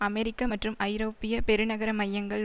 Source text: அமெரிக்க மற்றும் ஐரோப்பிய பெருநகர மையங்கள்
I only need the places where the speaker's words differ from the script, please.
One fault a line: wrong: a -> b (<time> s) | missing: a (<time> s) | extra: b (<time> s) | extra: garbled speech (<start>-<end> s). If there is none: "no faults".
no faults